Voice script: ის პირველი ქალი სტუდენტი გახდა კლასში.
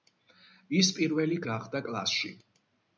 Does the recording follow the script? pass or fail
fail